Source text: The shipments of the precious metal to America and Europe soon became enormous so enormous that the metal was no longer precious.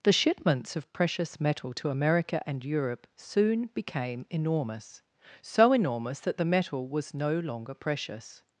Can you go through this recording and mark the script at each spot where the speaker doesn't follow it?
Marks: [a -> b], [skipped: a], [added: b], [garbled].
The shipments of [skipped: the] precious metal to America and Europe soon became enormous so enormous that the metal was no longer precious.